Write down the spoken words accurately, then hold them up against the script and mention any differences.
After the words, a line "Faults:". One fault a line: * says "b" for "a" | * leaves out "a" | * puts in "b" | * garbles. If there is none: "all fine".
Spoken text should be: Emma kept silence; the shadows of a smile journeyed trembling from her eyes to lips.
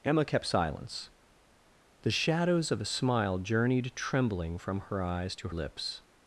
Emma kept silence; the shadows of a smile journeyed trembling from her eyes to lips.
Faults:
all fine